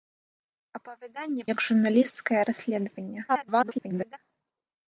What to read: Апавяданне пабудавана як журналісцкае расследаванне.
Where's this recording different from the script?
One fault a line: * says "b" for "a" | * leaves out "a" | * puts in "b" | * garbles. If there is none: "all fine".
* leaves out "пабудавана"
* garbles